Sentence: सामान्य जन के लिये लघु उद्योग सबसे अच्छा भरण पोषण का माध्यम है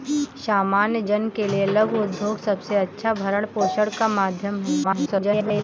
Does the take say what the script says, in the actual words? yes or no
no